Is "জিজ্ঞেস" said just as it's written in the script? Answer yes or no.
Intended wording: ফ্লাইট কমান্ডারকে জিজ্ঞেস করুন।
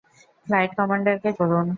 no